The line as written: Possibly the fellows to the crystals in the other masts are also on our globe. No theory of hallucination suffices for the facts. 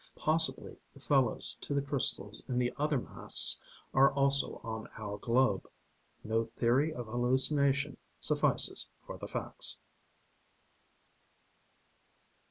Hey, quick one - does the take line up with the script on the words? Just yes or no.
yes